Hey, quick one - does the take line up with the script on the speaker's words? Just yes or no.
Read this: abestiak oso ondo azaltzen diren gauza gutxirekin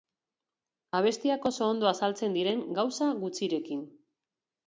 yes